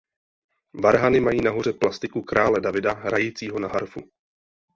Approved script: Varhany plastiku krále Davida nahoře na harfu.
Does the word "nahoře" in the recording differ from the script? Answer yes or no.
yes